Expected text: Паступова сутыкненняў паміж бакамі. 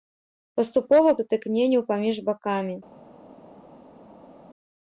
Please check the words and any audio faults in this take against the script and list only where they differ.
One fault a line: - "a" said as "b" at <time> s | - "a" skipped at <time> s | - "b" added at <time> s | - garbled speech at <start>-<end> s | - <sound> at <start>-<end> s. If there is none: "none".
none